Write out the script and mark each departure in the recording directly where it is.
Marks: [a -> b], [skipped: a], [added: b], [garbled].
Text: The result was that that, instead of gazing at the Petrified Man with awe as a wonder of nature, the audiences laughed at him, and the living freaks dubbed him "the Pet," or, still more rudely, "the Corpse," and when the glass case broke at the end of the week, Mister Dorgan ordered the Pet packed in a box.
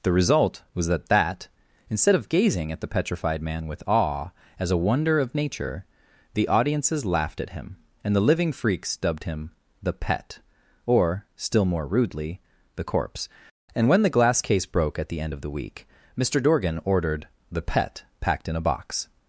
The result was that that, instead of gazing at the Petrified Man with awe as a wonder of nature, the audiences laughed at him, and the living freaks dubbed him "the Pet," or, still more rudely, "the Corpse," and when the glass case broke at the end of the week, Mister Dorgan ordered the Pet packed in a box.